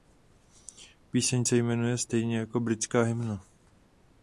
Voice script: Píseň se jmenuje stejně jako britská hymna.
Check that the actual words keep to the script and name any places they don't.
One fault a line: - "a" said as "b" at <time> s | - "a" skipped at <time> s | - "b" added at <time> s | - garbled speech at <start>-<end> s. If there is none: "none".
none